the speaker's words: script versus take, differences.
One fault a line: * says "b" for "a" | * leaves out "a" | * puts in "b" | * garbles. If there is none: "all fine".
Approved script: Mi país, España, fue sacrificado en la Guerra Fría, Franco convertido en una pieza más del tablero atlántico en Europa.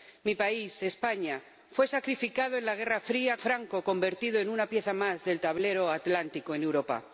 all fine